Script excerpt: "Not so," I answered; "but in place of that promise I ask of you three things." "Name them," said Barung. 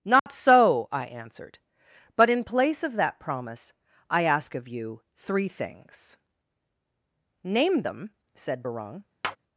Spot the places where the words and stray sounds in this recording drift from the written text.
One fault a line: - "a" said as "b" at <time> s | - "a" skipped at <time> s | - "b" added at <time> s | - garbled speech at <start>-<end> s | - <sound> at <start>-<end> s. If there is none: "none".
- dropout at 0.2-0.3 s
- tap at 9.2-9.4 s